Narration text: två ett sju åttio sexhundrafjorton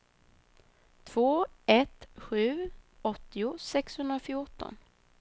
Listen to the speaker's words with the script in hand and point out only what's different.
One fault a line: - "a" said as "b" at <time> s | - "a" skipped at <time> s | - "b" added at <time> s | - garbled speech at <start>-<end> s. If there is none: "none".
none